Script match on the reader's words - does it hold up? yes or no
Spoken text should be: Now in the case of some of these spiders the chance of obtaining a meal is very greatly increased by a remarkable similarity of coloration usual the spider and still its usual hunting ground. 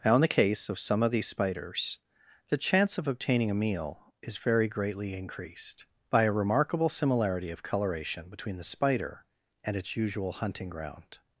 no